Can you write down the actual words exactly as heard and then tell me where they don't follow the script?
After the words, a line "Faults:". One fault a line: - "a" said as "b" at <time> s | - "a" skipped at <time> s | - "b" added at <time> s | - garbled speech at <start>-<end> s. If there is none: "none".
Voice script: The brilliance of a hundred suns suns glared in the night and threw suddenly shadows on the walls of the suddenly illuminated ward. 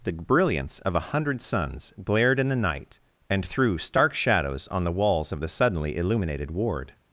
The brilliance of a hundred suns glared in the night and threw stark shadows on the walls of the suddenly illuminated ward.
Faults:
- "suns" skipped at 1.9 s
- "suddenly" said as "stark" at 3.8 s